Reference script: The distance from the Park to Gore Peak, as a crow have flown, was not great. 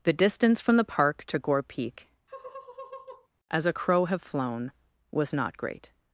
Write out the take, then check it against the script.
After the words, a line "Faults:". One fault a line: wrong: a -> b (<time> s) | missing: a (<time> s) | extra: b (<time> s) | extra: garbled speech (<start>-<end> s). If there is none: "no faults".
The distance from the Park to Gore Peak, as a crow have flown, was not great.
Faults:
no faults